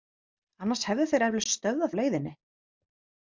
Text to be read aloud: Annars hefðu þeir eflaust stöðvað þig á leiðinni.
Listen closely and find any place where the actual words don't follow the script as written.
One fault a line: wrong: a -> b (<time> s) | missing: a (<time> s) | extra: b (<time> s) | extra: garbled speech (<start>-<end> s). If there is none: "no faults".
missing: þig (1.9 s)